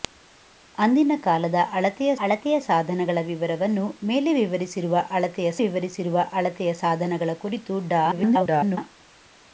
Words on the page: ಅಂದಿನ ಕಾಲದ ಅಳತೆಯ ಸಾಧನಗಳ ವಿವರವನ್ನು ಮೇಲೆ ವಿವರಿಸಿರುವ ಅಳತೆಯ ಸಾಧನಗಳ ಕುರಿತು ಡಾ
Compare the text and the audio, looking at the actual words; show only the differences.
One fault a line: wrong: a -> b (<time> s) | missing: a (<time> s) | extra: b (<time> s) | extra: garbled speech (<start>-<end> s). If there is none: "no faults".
extra: ಅಳತೆಯ (2.2 s)
extra: ವಿವರಿಸಿರುವ ಅಳತೆಯ (5.6 s)
extra: garbled speech (8.1-8.8 s)